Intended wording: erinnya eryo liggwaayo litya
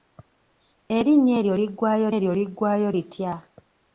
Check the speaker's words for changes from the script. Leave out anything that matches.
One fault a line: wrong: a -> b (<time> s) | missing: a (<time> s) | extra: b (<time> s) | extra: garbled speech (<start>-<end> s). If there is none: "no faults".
extra: eryo liggwaayo (2.2 s)